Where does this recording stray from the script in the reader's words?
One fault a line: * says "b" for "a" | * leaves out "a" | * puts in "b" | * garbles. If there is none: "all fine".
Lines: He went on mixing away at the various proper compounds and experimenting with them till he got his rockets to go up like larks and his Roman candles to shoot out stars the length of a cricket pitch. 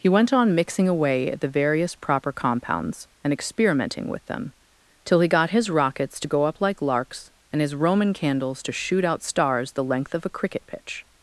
all fine